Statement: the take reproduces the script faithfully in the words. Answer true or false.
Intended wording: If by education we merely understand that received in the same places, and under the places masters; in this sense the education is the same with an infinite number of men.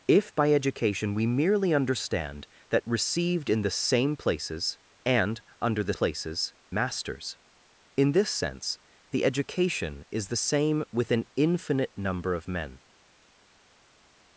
true